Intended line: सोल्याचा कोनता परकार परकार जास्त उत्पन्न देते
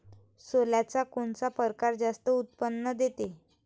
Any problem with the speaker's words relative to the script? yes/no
yes